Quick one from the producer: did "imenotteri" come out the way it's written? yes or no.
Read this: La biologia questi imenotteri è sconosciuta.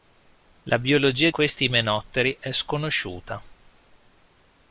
yes